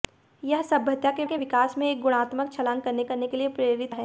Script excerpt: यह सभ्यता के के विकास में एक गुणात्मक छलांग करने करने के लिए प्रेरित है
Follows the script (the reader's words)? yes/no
yes